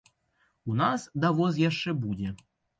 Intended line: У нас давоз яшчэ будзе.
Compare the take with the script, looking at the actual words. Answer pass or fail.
pass